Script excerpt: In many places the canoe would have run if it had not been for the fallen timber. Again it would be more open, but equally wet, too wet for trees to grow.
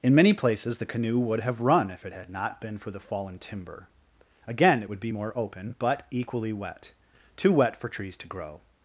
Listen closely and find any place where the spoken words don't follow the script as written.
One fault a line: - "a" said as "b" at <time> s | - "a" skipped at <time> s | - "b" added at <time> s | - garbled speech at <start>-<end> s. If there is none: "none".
none